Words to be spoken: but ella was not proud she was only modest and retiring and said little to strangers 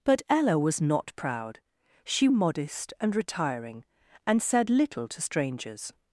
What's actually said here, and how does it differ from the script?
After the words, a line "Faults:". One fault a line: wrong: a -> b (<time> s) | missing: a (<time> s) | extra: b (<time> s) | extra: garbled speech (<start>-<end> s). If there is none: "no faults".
but ella was not proud she modest and retiring and said little to strangers
Faults:
missing: was only (2.3 s)